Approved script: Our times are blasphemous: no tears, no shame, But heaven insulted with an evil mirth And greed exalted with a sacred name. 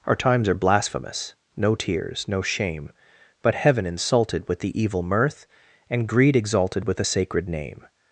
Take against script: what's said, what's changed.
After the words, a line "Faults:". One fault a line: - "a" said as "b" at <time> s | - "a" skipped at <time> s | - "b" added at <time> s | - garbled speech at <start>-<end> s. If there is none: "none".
Our times are blasphemous: no tears, no shame, But heaven insulted with the evil mirth And greed exalted with a sacred name.
Faults:
- "an" said as "the" at 4.6 s